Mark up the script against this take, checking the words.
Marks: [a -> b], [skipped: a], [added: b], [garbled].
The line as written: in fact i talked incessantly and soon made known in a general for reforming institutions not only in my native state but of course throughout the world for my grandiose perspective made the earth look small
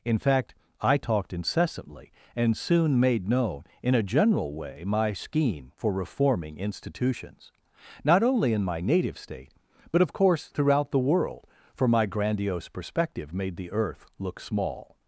in fact i talked incessantly and soon made known in a general [added: way my scheme] for reforming institutions not only in my native state but of course throughout the world for my grandiose perspective made the earth look small